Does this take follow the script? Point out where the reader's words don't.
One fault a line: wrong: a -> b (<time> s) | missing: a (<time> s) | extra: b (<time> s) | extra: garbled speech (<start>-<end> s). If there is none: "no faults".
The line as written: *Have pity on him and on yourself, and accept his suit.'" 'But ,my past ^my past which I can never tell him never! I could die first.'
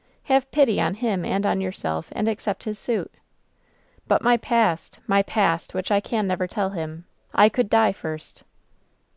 missing: never (7.0 s)